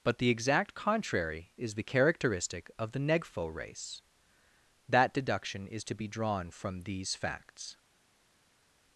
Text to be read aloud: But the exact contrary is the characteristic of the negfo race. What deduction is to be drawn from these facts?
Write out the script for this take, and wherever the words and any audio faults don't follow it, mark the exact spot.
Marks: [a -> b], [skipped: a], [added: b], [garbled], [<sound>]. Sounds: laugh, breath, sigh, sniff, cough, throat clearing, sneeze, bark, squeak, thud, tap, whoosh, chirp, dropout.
But the exact contrary is the characteristic of the negfo race. [What -> That] deduction is to be drawn from these facts?